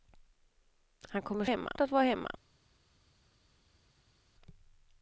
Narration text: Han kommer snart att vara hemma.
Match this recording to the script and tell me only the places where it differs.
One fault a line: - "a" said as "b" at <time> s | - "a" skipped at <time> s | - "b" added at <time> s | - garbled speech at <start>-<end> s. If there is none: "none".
- "snart" said as "hemma" at 1.4 s